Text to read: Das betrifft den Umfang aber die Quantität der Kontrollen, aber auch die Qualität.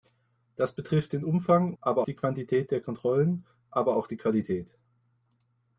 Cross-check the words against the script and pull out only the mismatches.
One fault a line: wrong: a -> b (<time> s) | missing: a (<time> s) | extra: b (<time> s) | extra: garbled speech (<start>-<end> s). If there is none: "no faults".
no faults